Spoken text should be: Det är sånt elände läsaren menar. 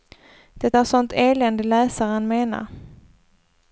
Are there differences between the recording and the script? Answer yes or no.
no